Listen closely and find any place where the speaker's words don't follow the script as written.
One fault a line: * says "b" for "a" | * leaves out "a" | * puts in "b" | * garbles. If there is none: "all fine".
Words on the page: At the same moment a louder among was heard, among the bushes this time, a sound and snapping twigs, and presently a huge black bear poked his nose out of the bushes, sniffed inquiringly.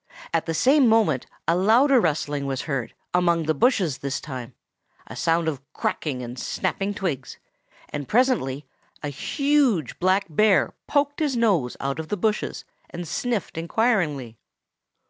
* says "rustling" for "among"
* puts in "of cracking"
* puts in "and"